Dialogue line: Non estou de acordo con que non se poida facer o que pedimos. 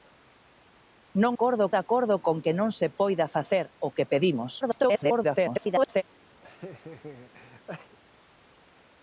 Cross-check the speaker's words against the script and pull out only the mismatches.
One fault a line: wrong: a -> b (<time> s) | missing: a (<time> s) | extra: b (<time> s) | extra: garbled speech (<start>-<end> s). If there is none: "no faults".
wrong: estou -> acordo (1.3 s)
extra: garbled speech (4.6-6.0 s)